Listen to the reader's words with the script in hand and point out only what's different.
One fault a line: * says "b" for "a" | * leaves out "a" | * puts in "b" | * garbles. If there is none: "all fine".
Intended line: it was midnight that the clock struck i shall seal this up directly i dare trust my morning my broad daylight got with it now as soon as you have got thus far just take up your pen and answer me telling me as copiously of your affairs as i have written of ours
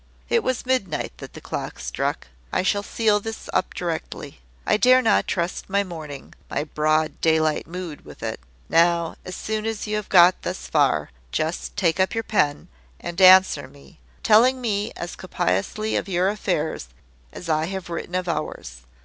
* puts in "not"
* says "mood" for "got"